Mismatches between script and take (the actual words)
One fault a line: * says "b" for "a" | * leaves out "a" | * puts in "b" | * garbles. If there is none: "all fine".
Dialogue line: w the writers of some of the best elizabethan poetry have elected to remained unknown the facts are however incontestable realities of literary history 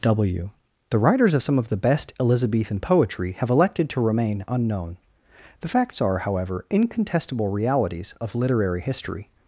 * says "remain" for "remained"